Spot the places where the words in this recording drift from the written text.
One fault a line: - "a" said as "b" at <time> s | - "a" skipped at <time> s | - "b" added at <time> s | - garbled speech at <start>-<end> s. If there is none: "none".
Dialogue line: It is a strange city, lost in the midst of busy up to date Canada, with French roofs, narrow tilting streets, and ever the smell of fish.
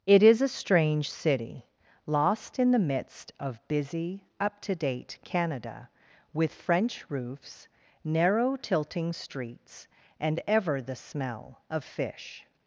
none